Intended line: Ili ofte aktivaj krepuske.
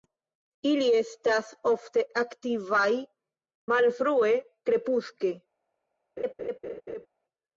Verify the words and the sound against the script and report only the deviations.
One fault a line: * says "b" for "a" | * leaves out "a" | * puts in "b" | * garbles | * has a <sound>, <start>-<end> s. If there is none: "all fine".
* puts in "estas"
* puts in "malfrue"
* has a laugh, 6.2-7.1 s